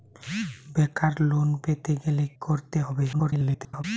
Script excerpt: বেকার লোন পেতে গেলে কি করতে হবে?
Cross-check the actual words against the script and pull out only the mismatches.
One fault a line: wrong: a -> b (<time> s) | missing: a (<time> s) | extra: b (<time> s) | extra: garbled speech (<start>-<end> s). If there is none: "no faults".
missing: কি (2.2 s)
extra: garbled speech (3.1-3.8 s)